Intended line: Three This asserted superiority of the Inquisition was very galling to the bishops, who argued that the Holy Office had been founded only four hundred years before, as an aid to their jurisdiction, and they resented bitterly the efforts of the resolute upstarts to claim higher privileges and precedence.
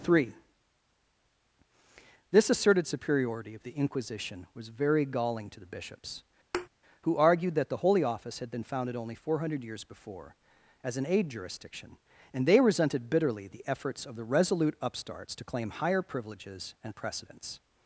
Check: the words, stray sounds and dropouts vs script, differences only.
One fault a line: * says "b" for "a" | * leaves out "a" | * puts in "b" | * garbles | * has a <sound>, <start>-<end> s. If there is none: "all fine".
* has a thud, 6.5-6.7 s
* leaves out "to their"